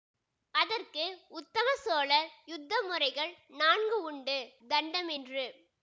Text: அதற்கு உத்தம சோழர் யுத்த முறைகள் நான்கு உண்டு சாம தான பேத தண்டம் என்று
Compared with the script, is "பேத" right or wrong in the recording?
wrong